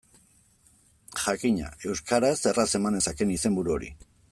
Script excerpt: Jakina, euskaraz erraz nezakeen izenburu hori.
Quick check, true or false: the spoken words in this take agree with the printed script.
false